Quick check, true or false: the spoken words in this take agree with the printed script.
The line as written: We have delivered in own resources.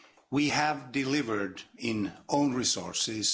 true